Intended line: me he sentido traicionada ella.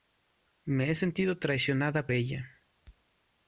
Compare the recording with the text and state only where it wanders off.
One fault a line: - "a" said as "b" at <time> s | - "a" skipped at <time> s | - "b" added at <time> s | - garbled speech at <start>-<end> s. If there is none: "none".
none